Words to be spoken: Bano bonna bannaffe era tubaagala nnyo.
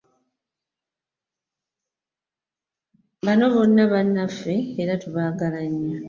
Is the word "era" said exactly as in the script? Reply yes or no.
yes